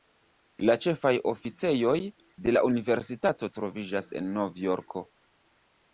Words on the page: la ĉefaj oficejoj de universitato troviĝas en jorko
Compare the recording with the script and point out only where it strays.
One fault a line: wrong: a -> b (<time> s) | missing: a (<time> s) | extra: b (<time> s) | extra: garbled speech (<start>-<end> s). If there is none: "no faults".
extra: la (2.5 s)
extra: nov (4.4 s)